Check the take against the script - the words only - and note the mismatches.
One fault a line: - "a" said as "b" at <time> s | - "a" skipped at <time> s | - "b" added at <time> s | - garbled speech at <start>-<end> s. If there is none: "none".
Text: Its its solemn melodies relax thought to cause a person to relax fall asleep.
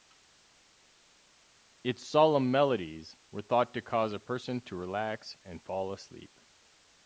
- "its" skipped at 2.1 s
- "relax" said as "were" at 3.3 s
- "and" added at 5.4 s